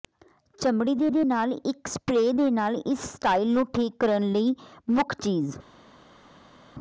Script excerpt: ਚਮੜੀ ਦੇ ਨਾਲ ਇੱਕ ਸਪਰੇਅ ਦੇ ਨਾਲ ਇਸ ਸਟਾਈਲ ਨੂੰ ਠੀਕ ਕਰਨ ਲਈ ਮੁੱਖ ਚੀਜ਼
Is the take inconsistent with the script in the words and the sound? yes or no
yes